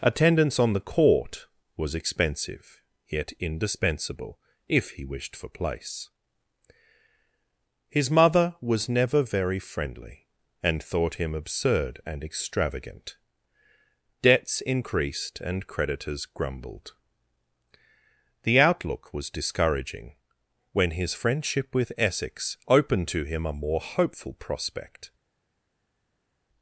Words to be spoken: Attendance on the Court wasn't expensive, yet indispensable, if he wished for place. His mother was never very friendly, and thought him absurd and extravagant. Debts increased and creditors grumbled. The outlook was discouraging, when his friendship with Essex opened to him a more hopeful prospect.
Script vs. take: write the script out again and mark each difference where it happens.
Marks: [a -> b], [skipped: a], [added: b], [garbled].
Attendance on the Court [wasn't -> was] expensive, yet indispensable, if he wished for place. His mother was never very friendly, and thought him absurd and extravagant. Debts increased and creditors grumbled. The outlook was discouraging, when his friendship with Essex opened to him a more hopeful prospect.